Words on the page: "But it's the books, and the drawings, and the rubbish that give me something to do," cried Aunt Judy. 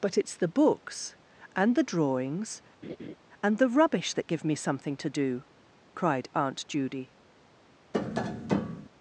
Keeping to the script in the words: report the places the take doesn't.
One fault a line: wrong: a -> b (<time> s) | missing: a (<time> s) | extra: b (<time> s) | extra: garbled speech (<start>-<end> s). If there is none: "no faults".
no faults